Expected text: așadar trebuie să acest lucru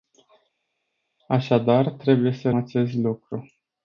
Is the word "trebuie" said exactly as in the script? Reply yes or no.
yes